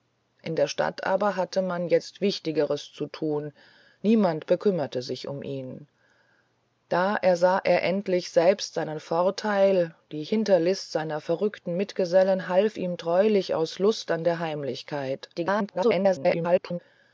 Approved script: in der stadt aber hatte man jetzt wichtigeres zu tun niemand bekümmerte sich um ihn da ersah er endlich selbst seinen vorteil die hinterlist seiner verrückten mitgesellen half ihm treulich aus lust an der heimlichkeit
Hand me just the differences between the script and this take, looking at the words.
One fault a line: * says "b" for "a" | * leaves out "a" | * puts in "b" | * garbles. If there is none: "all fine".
* garbles